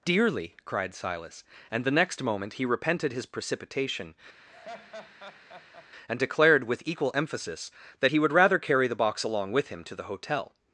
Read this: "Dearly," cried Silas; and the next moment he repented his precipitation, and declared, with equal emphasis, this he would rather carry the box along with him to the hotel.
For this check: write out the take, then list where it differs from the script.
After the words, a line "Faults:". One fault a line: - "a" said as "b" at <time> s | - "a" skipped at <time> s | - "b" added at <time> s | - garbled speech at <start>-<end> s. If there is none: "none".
"Dearly," cried Silas; and the next moment he repented his precipitation, and declared, with equal emphasis, that he would rather carry the box along with him to the hotel.
Faults:
- "this" said as "that" at 8.0 s